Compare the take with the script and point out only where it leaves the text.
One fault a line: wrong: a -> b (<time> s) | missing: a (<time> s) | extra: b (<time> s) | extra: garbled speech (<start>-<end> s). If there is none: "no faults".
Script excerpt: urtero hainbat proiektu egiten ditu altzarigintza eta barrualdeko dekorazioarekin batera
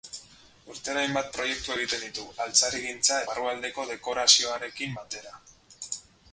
missing: eta (3.2 s)